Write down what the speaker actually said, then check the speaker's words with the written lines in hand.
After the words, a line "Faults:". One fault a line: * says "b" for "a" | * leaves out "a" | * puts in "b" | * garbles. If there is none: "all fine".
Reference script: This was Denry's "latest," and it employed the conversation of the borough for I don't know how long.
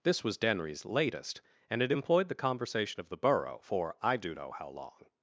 This was Denry's "latest," and it employed the conversation of the borough for I do know how long.
Faults:
* says "do" for "don't"